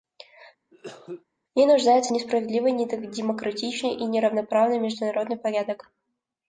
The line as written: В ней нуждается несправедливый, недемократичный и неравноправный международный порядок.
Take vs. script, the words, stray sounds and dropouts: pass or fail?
fail